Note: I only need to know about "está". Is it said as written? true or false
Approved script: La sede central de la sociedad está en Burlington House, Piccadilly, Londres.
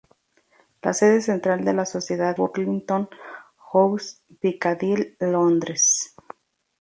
false